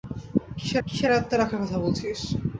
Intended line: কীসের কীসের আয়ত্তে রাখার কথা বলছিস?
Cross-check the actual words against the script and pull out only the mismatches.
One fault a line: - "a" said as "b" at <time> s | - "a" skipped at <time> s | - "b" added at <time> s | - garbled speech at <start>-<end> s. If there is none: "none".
none